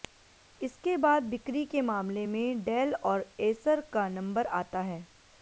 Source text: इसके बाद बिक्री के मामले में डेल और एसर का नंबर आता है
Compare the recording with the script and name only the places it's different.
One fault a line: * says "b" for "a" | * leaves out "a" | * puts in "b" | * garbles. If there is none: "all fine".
all fine